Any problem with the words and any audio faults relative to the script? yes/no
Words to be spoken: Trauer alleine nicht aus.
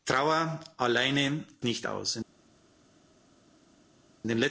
no